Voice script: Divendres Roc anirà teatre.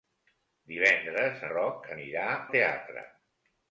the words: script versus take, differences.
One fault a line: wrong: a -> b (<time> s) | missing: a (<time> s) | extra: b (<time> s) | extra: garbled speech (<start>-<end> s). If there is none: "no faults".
no faults